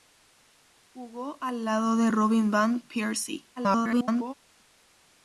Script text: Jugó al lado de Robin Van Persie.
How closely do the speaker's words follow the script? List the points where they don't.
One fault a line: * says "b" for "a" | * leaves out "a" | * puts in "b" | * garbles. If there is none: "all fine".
* garbles